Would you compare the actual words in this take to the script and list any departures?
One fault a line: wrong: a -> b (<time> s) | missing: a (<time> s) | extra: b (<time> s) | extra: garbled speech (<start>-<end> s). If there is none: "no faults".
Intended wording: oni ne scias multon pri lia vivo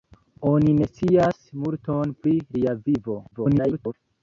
extra: garbled speech (3.3-3.9 s)